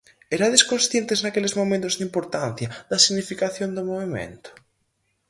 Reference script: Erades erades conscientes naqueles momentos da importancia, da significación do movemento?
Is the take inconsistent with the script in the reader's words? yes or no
yes